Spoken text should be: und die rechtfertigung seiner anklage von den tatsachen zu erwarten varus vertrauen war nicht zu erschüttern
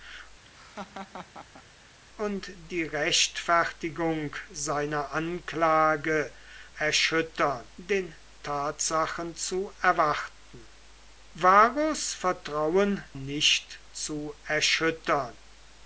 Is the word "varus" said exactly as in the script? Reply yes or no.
yes